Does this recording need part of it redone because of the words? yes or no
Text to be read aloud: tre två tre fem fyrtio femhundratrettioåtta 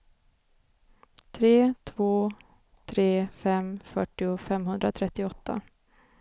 no